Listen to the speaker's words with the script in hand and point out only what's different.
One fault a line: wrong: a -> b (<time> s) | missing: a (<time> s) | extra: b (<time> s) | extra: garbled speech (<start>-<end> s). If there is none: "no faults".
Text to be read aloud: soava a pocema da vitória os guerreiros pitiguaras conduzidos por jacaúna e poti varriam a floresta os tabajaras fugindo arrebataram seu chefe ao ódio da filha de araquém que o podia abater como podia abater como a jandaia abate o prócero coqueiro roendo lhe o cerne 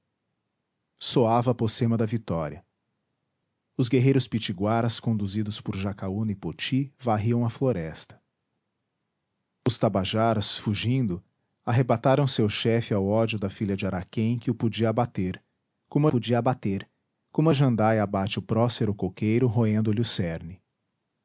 no faults